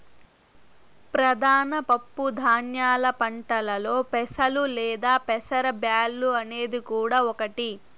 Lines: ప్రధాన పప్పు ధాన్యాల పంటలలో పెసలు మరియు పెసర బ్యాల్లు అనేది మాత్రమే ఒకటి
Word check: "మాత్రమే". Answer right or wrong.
wrong